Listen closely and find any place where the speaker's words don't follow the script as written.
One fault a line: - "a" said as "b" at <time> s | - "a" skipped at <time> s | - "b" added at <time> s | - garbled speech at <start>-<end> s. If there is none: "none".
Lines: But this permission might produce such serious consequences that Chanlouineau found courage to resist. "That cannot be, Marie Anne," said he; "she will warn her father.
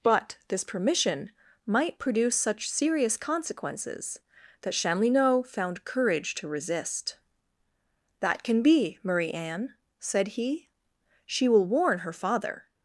- "cannot" said as "can" at 8.4 s